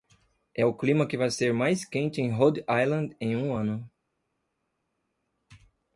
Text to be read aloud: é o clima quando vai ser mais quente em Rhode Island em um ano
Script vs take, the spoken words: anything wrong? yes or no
yes